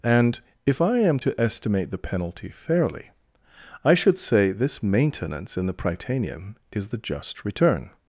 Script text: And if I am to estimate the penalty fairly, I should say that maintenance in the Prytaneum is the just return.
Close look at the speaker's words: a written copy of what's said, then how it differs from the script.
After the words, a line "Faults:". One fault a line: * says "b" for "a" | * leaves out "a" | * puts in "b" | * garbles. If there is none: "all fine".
And if I am to estimate the penalty fairly, I should say this maintenance in the Prytaneum is the just return.
Faults:
* says "this" for "that"